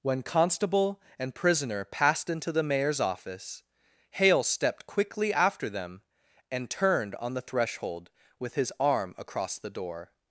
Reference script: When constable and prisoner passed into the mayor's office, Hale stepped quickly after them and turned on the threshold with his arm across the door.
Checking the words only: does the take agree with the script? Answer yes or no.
yes